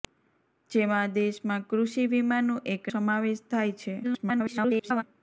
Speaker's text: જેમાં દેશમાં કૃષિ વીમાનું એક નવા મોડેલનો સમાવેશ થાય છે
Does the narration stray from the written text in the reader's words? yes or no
yes